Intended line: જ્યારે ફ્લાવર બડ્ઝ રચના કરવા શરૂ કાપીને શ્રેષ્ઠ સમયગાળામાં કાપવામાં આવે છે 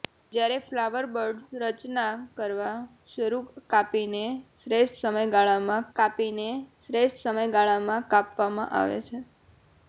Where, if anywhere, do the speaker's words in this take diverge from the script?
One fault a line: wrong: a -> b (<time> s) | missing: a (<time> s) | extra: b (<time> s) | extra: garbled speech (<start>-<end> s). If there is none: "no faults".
extra: કાપીને શ્રેષ્ઠ સમયગાળામાં (5.9 s)